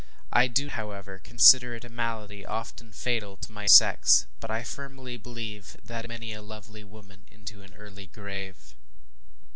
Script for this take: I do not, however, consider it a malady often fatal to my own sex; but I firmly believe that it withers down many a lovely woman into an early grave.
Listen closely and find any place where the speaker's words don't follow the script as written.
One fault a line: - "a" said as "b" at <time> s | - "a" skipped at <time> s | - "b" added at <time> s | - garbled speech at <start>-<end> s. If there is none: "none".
- "not" skipped at 0.7 s
- "own" skipped at 3.7 s
- "it withers down" skipped at 6.0 s